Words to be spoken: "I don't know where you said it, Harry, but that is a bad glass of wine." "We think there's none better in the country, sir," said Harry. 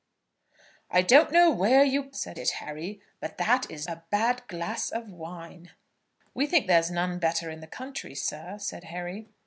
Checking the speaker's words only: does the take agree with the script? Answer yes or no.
yes